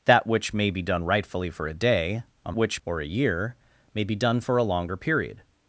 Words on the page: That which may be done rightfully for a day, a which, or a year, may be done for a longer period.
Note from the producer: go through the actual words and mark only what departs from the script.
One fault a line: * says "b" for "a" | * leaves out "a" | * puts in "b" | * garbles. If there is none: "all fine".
all fine